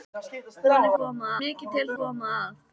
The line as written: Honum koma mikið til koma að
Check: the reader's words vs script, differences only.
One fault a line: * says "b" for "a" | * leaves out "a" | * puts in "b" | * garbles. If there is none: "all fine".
all fine